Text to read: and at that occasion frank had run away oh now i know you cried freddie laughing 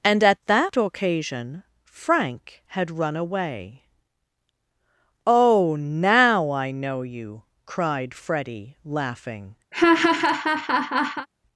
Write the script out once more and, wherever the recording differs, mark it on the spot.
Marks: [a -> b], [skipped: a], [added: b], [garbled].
and at that occasion frank had run away oh now i know you cried freddie laughing